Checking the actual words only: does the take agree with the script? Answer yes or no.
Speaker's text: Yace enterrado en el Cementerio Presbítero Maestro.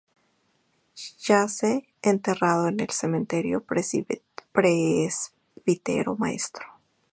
yes